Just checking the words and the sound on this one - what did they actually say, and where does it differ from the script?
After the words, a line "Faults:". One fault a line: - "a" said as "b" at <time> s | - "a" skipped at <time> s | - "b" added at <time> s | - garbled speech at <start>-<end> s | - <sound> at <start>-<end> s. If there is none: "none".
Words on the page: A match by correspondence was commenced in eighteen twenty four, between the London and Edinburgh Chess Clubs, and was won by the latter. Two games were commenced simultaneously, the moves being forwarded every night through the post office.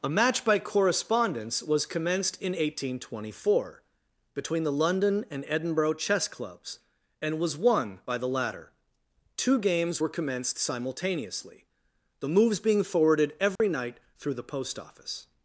A match by correspondence was commenced in eighteen twenty four, between the London and Edinburgh Chess Clubs, and was won by the latter. Two games were commenced simultaneously, the moves being forwarded every night through the post office.
Faults:
- dropout at 13.6-13.6 s